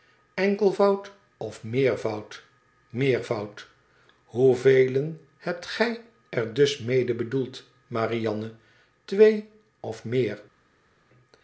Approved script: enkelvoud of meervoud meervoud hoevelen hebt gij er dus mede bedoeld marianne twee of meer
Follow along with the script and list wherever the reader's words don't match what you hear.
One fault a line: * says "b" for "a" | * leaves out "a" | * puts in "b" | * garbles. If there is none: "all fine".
all fine